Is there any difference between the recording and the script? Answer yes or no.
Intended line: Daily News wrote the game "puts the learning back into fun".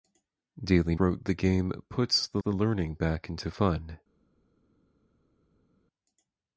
yes